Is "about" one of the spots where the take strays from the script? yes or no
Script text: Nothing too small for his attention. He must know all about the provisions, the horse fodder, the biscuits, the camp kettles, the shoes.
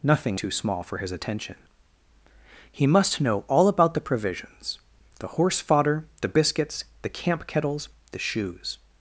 no